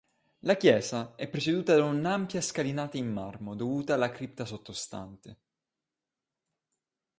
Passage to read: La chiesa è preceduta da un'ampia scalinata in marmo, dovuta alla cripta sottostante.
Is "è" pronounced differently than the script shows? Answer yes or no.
no